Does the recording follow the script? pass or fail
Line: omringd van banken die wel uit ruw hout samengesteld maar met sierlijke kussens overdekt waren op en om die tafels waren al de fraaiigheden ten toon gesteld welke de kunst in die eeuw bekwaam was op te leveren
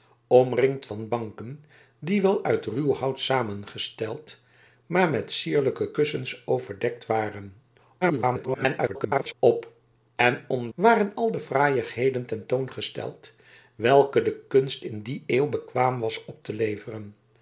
fail